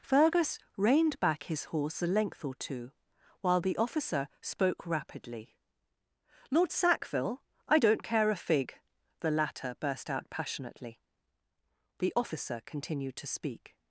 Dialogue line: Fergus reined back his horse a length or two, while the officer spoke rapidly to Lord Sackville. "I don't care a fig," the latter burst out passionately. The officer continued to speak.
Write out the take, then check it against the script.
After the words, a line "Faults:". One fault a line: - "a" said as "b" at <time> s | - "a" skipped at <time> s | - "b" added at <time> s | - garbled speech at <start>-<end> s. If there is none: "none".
Fergus reined back his horse a length or two, while the officer spoke rapidly Lord Sackville. "I don't care a fig," the latter burst out passionately. The officer continued to speak.
Faults:
- "to" skipped at 5.5 s